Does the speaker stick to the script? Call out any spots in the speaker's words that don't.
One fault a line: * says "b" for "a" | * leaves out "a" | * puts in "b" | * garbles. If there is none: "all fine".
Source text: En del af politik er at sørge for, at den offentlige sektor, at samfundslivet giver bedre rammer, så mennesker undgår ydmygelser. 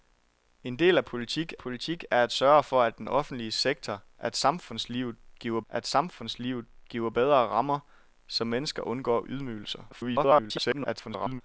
* puts in "politik"
* puts in "at samfundslivet giver"
* garbles